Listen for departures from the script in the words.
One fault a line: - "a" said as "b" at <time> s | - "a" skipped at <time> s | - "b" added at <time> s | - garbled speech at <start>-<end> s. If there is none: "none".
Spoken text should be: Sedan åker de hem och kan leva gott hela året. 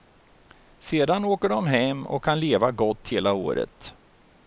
none